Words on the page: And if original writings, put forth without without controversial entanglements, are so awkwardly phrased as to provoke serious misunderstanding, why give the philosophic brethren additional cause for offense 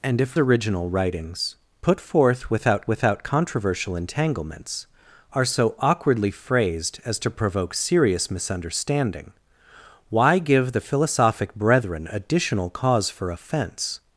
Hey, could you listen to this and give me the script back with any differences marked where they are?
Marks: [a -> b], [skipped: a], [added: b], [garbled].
And if original writings, put forth without without controversial entanglements, are so awkwardly phrased as to provoke serious misunderstanding, why give the philosophic brethren additional cause for offense